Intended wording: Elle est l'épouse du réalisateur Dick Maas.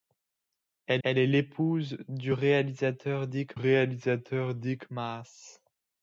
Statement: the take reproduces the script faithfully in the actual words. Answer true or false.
false